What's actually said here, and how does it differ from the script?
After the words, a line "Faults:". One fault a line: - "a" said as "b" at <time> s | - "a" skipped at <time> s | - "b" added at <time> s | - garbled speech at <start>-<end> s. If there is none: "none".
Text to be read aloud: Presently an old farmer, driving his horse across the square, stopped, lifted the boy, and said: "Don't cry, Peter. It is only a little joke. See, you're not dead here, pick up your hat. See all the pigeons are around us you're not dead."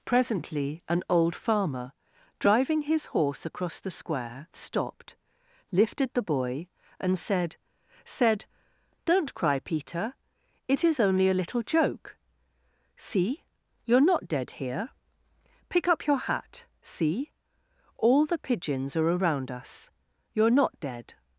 Presently an old farmer, driving his horse across the square, stopped, lifted the boy, and said said: "Don't cry, Peter. It is only a little joke. See, you're not dead here, pick up your hat. See all the pigeons are around us you're not dead."
Faults:
- "said" added at 8.1 s